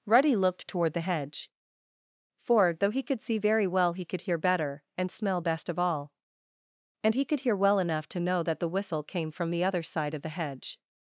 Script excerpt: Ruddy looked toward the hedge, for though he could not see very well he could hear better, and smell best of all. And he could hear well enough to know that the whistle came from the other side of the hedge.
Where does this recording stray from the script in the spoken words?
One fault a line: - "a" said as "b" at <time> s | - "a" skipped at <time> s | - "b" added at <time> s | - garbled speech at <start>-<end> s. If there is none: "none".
- "not" skipped at 3.2 s